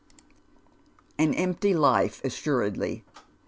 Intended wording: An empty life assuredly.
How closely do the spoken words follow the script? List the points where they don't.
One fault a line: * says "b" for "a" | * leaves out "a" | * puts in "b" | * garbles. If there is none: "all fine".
all fine